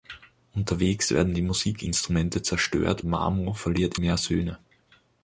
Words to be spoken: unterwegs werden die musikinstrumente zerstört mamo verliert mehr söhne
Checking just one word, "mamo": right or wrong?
right